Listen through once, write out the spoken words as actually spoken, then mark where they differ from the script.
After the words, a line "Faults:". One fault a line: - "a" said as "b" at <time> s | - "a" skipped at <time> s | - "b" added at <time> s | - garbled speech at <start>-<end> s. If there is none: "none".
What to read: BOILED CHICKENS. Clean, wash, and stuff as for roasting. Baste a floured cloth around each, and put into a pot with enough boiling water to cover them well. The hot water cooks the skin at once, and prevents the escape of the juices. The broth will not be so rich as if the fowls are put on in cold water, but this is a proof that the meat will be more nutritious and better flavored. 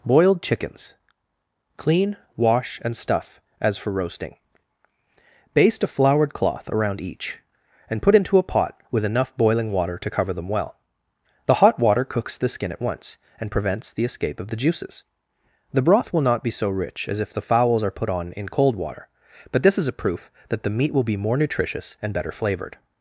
BOILED CHICKENS. Clean, wash, and stuff as for roasting. Baste a floured cloth around each, and put into a pot with enough boiling water to cover them well. The hot water cooks the skin at once, and prevents the escape of the juices. The broth will not be so rich as if the fowls are put on in cold water, but this is a proof that the meat will be more nutritious and better flavored.
Faults:
none